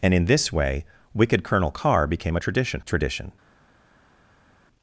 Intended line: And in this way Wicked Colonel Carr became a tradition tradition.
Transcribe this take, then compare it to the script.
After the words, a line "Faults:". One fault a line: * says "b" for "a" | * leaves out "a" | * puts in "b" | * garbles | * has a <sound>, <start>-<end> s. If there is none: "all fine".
And in this way Wicked Colonel Carr became a tradition tradition.
Faults:
all fine